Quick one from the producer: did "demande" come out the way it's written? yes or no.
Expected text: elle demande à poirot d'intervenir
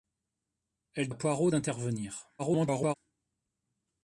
no